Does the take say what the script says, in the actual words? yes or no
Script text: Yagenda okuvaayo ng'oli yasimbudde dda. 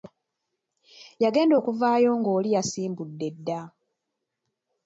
yes